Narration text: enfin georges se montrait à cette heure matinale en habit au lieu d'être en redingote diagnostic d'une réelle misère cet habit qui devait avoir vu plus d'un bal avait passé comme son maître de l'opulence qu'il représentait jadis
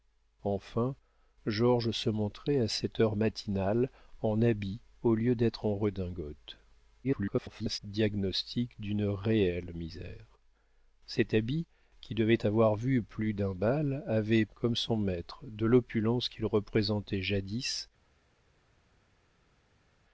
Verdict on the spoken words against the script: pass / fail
fail